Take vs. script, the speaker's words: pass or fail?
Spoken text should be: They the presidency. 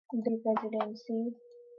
pass